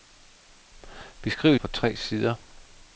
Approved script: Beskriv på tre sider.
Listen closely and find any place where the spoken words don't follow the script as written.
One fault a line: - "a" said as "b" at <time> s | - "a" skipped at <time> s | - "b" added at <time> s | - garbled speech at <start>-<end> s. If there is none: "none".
none